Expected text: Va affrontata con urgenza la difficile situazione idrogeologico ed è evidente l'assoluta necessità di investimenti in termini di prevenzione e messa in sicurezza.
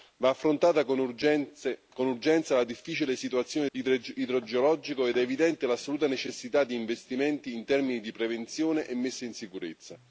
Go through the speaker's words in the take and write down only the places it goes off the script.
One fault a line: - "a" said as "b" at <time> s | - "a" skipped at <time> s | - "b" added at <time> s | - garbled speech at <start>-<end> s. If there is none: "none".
none